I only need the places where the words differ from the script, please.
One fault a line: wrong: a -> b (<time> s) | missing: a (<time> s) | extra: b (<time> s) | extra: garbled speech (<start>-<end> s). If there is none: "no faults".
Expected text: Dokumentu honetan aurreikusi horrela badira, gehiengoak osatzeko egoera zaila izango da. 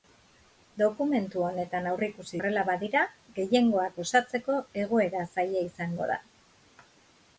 no faults